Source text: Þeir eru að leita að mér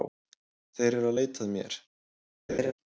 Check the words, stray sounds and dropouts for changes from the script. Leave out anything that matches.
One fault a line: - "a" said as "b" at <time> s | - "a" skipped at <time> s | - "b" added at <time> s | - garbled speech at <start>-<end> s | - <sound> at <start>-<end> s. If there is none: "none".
- laugh at 2.5-2.7 s